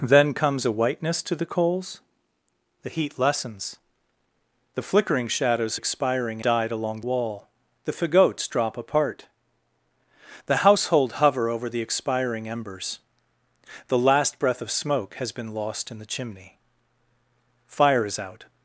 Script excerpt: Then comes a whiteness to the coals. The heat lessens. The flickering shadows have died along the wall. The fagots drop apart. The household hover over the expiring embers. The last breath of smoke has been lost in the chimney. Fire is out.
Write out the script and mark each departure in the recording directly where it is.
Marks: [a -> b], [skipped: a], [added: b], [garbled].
Then comes a whiteness to the coals. The heat lessens. The flickering shadows [have -> expiring] died along [skipped: the] wall. The fagots drop apart. The household hover over the expiring embers. The last breath of smoke has been lost in the chimney. Fire is out.